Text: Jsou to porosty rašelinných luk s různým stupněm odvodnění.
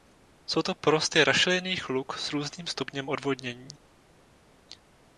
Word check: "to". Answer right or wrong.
right